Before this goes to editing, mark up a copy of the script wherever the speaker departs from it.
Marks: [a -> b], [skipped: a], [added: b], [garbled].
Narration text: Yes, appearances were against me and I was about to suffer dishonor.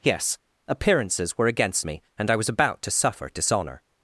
Yes, appearances were against me and I was about to suffer dishonor.